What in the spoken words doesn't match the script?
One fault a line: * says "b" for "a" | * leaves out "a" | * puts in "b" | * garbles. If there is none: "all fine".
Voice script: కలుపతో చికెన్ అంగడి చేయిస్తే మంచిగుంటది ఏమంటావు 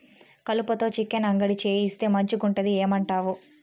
all fine